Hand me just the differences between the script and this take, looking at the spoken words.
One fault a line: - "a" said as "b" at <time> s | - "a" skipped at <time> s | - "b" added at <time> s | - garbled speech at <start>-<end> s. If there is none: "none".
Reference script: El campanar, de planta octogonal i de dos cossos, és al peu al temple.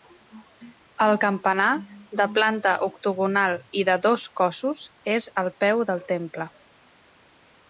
- "al" said as "del" at 5.9 s